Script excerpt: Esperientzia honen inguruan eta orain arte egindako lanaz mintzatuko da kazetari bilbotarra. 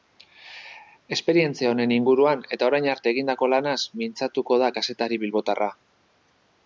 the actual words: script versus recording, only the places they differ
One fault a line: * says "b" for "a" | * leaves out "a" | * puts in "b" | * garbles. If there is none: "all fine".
all fine